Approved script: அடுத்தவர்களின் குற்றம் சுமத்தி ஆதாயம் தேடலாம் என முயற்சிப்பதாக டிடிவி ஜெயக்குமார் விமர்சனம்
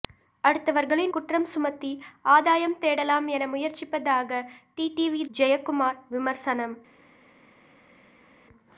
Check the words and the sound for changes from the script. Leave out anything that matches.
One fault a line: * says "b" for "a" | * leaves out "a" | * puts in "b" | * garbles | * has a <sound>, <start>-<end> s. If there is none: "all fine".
all fine